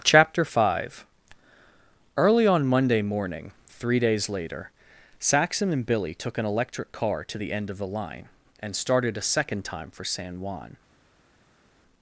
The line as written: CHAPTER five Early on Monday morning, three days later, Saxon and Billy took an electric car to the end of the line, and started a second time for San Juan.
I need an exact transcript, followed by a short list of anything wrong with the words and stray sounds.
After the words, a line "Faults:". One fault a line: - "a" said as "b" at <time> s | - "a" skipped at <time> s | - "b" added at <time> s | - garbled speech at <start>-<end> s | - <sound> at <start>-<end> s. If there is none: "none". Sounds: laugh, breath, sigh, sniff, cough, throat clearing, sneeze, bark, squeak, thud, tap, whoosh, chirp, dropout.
CHAPTER five Early on Monday morning, three days later, Saxon and Billy took an electric car to the end of the line, and started a second time for San Juan.
Faults:
none